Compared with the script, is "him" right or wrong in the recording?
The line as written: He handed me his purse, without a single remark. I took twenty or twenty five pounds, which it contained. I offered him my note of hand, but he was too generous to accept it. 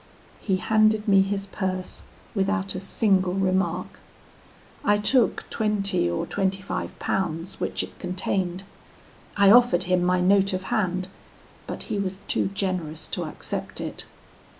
right